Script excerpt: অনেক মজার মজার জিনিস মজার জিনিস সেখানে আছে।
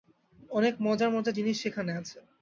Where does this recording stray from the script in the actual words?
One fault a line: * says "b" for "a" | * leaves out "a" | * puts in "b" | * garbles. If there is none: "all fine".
* leaves out "মজার জিনিস"